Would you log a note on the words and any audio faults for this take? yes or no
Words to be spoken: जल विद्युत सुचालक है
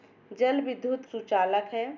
no